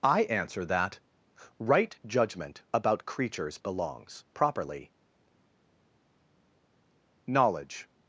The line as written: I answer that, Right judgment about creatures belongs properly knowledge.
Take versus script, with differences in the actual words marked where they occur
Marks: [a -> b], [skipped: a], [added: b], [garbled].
I answer that, Right judgment about creatures belongs properly knowledge.